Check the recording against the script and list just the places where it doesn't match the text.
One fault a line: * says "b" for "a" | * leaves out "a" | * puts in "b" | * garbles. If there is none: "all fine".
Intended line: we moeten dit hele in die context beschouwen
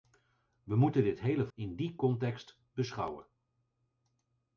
all fine